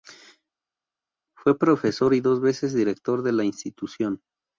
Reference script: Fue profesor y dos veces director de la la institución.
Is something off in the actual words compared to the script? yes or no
yes